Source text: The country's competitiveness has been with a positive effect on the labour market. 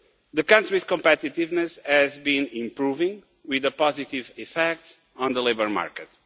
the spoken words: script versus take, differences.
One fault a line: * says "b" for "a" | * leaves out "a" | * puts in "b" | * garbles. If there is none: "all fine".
* puts in "improving"